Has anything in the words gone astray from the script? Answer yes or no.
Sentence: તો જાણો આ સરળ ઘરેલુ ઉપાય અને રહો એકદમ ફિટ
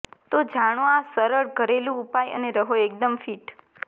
no